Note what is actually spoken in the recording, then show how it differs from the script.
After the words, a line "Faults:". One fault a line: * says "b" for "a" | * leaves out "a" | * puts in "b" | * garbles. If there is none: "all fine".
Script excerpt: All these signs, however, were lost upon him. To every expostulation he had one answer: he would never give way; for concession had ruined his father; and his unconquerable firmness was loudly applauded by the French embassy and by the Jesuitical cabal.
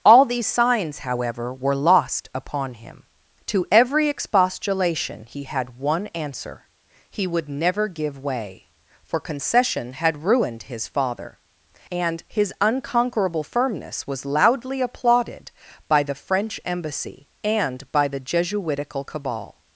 All these signs, however, were lost upon him. To every expostulation he had one answer: he would never give way; for concession had ruined his father; and his unconquerable firmness was loudly applauded by the French embassy and by the Jesuitical cabal.
Faults:
all fine